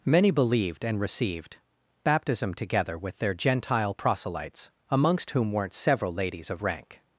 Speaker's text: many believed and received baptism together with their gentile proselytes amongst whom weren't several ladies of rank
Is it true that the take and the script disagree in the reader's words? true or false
false